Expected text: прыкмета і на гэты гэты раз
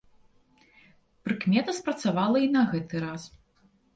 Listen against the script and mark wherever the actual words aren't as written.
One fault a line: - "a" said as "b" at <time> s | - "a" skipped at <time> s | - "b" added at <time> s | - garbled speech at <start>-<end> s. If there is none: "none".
- "спрацавала" added at 1.8 s
- "гэты" skipped at 2.9 s